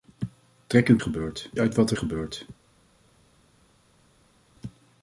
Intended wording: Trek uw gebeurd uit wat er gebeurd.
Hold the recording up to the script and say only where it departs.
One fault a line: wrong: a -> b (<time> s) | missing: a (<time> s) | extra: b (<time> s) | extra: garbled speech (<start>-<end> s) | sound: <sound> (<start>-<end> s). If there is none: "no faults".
no faults